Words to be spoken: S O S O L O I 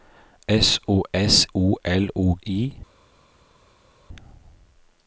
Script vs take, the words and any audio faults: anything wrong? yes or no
no